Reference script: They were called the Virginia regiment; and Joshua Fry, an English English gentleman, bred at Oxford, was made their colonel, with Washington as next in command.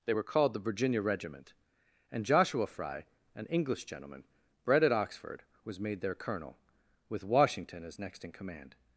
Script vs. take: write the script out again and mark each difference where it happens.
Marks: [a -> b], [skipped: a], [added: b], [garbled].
They were called the Virginia regiment; and Joshua Fry, an English [skipped: English] gentleman, bred at Oxford, was made their colonel, with Washington as next in command.